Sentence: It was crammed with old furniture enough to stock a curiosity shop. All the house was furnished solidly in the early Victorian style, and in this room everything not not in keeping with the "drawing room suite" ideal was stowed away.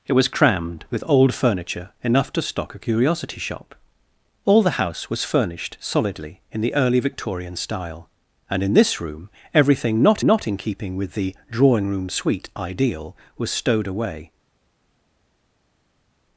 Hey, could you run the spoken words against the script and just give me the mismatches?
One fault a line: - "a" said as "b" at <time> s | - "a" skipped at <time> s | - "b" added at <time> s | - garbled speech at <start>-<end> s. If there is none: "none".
none